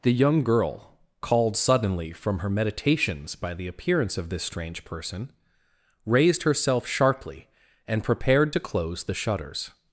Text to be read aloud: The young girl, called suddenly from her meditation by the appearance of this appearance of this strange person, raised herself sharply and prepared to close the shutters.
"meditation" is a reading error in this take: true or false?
true